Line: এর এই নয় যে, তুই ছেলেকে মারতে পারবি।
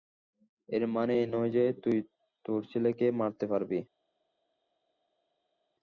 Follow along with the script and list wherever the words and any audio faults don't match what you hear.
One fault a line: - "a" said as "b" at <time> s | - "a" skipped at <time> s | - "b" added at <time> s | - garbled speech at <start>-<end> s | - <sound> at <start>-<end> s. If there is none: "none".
- "মানে" added at 0.9 s
- "তোর" added at 2.5 s